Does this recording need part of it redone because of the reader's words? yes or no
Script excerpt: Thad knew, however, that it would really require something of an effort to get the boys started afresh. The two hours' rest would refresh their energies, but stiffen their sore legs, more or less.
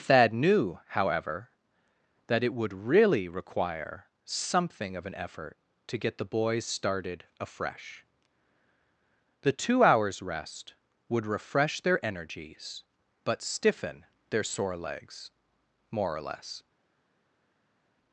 no